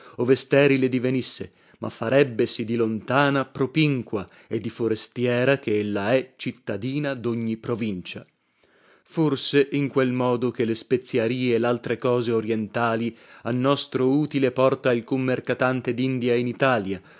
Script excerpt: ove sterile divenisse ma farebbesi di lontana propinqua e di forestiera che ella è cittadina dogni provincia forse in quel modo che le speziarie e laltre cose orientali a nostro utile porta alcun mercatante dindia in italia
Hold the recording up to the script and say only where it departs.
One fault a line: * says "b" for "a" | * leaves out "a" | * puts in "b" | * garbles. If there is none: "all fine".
all fine